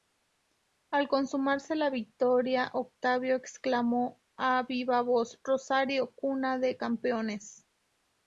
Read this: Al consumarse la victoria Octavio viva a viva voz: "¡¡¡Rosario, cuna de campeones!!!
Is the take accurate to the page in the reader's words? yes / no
no